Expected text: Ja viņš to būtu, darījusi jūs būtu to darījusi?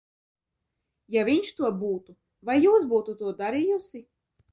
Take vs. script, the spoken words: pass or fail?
fail